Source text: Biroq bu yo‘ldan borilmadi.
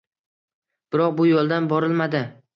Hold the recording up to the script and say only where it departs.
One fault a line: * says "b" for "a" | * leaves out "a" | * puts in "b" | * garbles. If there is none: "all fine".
all fine